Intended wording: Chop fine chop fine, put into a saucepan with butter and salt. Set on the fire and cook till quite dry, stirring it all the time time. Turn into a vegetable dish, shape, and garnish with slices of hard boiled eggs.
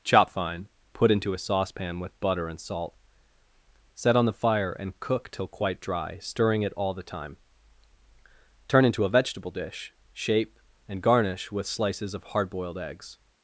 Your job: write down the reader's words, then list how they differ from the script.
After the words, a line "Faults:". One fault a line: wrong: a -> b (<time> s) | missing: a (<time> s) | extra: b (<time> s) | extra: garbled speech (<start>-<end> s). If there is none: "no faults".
Chop fine, put into a saucepan with butter and salt. Set on the fire and cook till quite dry, stirring it all the time. Turn into a vegetable dish, shape, and garnish with slices of hard boiled eggs.
Faults:
missing: chop fine (0.7 s)
missing: time (7.4 s)